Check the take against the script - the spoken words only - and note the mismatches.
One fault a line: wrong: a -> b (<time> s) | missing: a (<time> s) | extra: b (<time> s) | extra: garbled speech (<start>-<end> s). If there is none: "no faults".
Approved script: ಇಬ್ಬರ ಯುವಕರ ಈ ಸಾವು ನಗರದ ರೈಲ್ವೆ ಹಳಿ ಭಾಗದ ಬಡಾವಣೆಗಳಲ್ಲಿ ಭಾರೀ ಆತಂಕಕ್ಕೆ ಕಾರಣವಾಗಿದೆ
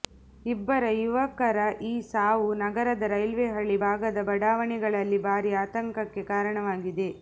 no faults